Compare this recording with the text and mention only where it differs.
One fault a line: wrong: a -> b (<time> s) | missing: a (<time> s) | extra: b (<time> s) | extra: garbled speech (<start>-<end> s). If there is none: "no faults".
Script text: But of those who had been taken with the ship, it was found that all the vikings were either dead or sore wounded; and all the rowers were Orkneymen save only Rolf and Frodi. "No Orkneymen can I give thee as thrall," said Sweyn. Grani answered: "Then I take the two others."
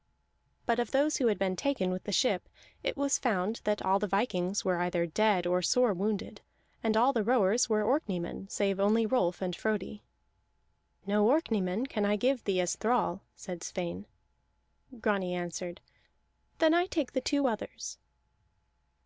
no faults